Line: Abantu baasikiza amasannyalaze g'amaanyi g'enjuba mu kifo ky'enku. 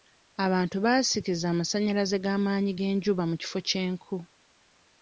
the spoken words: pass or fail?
pass